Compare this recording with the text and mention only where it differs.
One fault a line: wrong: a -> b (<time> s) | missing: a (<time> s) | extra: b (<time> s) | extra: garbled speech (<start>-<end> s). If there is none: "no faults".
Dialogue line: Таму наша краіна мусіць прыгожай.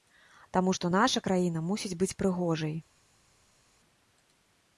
extra: што (0.7 s)
extra: быць (2.0 s)